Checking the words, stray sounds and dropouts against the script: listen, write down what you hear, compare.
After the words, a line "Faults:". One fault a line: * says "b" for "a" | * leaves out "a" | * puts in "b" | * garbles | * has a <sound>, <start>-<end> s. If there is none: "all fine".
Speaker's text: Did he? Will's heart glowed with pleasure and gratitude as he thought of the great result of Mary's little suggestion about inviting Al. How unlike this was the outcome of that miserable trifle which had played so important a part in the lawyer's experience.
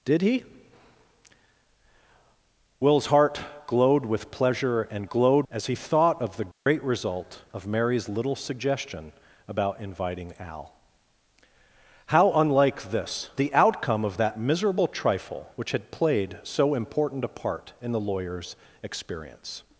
Did he? Will's heart glowed with pleasure and glowed as he thought of the great result of Mary's little suggestion about inviting Al. How unlike this the outcome of that miserable trifle which had played so important a part in the lawyer's experience.
Faults:
* says "glowed" for "gratitude"
* has a dropout, 6.5-6.7 s
* leaves out "was"